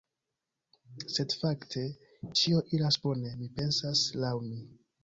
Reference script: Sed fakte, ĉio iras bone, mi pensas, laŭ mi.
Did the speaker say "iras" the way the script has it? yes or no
yes